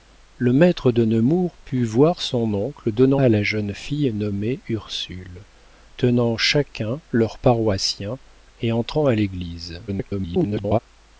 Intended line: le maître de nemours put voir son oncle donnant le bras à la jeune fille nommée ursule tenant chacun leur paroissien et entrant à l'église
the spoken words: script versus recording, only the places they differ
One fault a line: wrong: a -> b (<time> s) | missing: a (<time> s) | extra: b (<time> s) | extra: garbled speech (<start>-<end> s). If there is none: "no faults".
missing: le bras (3.2 s)
extra: garbled speech (9.9-10.8 s)